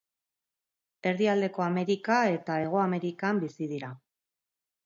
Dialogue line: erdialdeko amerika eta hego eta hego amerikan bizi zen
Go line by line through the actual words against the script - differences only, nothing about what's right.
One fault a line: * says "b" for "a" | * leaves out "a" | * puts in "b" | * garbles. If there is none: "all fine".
* leaves out "eta hego"
* says "dira" for "zen"